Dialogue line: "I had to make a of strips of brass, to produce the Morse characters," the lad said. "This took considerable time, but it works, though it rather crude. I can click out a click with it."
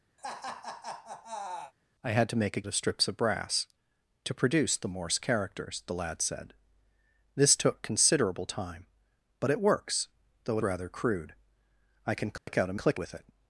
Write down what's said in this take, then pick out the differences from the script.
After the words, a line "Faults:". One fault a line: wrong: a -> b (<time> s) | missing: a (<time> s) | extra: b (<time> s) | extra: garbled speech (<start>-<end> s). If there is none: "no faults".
"I had to make a of strips of brass, to produce the Morse characters," the lad said. "This took considerable time, but it works, though it rather crude. I can click out a click with it."
Faults:
no faults